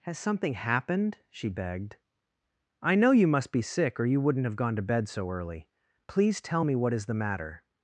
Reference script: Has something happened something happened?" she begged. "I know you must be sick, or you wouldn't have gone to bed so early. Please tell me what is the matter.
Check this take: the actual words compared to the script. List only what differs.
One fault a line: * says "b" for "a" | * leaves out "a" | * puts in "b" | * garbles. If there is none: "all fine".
* leaves out "something happened"